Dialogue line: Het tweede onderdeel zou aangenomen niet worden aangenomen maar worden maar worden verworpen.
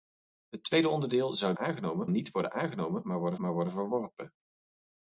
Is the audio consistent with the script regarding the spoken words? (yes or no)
yes